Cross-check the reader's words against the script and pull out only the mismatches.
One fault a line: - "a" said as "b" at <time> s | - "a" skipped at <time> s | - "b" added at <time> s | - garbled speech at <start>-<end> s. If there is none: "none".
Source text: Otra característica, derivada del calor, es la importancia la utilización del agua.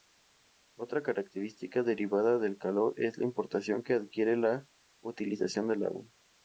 - "que adquiere" added at 3.8 s